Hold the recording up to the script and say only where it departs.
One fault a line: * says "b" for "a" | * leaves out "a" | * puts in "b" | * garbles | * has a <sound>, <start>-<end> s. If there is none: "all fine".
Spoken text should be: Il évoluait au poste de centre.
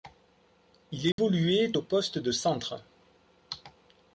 * has a dropout, 1.1-1.2 s